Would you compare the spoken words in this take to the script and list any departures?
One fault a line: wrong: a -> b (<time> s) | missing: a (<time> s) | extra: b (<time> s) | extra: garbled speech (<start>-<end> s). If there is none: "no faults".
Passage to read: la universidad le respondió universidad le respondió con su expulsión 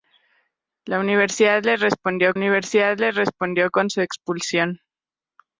no faults